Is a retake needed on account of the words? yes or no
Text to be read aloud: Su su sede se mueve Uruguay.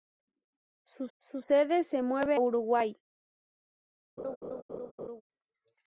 no